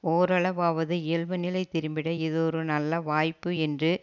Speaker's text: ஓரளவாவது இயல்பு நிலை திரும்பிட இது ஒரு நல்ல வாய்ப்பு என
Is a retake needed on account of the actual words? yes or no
yes